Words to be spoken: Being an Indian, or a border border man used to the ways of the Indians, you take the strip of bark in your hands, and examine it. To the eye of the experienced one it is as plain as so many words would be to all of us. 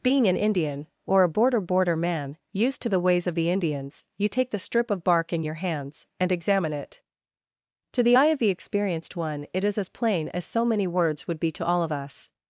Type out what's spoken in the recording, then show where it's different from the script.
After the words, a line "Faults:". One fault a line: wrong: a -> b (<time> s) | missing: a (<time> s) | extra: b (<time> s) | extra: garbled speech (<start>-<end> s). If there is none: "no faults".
Being an Indian, or a border border man used to the ways of the Indians, you take the strip of bark in your hands, and examine it. To the eye of the experienced one it is as plain as so many words would be to all of us.
Faults:
no faults